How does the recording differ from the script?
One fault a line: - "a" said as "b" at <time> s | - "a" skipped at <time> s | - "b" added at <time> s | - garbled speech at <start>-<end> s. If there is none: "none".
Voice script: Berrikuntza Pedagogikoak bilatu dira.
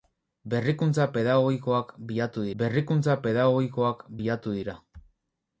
- "berrikuntza Pedagogikoak bilatu" added at 2.6 s